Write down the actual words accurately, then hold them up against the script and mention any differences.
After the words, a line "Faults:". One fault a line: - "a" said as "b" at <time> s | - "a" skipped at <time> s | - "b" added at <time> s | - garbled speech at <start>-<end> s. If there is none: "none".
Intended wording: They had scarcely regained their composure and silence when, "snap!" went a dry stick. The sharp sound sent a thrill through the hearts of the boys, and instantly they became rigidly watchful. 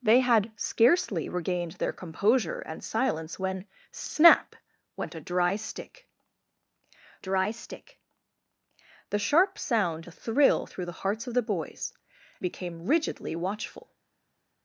They had scarcely regained their composure and silence when, "snap!" went a dry stick dry stick. The sharp sound a thrill through the hearts of the boys, became rigidly watchful.
Faults:
- "dry stick" added at 7.2 s
- "sent" skipped at 10.1 s
- "and instantly they" skipped at 11.9 s